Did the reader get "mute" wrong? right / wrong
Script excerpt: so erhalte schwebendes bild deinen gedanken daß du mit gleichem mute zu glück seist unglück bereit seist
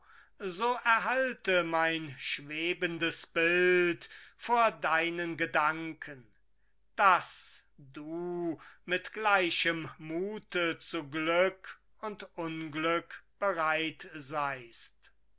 right